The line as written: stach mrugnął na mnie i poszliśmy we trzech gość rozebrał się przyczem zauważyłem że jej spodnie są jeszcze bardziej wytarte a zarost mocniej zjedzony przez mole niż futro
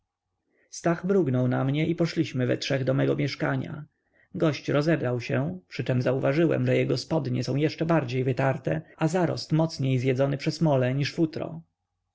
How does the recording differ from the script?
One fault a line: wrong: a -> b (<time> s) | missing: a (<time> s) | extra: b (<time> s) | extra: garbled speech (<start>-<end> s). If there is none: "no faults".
extra: do mego mieszkania (2.8 s)
wrong: jej -> jego (6.8 s)